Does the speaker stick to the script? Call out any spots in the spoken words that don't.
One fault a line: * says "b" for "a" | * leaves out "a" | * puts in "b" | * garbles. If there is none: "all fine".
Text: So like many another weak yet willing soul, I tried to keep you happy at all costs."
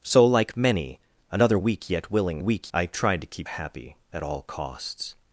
* says "weak" for "soul"
* leaves out "you"